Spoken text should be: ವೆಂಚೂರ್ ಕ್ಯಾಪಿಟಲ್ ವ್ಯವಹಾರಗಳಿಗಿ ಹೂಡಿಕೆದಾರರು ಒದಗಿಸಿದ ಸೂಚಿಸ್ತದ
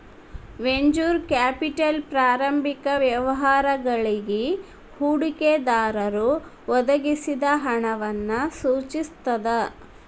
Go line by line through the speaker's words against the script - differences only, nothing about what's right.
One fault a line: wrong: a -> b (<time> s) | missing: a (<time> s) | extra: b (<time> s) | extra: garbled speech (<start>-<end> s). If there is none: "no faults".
extra: ಪ್ರಾರಂಭಿಕ (2.1 s)
extra: ಹಣವನ್ನ (7.6 s)